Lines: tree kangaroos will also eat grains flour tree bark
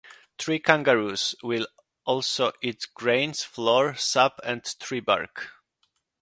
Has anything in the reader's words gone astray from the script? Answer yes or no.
yes